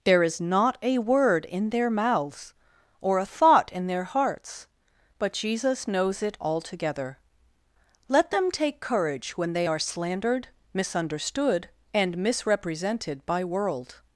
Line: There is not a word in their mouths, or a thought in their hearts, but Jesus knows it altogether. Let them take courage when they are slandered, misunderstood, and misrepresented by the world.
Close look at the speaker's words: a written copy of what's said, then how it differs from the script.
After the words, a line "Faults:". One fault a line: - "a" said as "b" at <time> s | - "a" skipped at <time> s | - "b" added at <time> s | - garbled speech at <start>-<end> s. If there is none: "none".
There is not a word in their mouths, or a thought in their hearts, but Jesus knows it altogether. Let them take courage when they are slandered, misunderstood, and misrepresented by world.
Faults:
- "the" skipped at 13.4 s